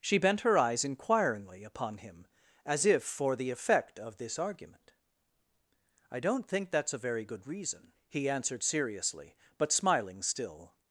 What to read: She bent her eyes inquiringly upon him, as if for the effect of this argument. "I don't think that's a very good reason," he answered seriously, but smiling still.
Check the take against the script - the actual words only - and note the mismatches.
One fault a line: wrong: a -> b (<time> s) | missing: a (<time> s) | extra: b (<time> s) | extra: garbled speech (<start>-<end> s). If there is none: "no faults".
no faults